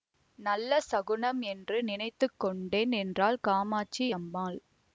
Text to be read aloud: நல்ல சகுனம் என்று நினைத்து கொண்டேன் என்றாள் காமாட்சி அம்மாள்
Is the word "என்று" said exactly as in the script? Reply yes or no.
yes